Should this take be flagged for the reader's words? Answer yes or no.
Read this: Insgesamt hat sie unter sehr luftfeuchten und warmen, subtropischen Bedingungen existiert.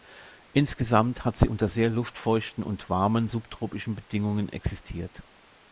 no